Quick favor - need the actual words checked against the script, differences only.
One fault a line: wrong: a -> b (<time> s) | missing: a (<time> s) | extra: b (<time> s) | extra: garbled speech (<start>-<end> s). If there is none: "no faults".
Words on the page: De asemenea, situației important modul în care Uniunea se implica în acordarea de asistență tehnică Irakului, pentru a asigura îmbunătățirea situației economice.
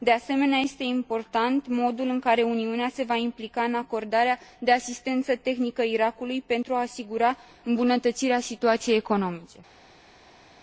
wrong: situației -> este (0.6 s)
extra: va (3.0 s)